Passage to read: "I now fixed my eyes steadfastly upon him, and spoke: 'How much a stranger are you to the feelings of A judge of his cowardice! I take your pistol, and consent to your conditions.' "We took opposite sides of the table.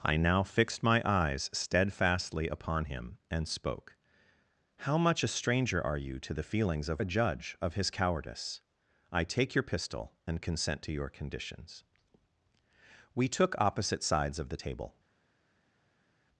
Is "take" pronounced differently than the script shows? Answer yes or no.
no